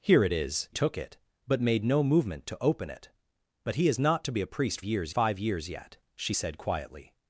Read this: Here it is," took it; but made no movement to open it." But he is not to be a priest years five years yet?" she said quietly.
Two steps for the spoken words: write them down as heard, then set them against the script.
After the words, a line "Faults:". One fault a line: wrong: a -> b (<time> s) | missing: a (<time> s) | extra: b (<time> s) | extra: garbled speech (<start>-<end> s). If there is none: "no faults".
Here it is," took it; but made no movement to open it." But he is not to be a priest years five years yet?" she said quietly.
Faults:
no faults